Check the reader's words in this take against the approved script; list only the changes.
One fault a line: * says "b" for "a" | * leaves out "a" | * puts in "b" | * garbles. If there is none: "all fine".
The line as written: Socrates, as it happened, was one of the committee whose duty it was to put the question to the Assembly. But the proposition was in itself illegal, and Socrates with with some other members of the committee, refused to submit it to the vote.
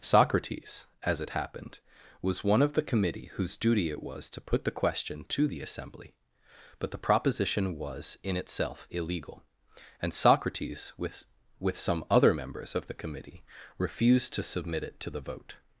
all fine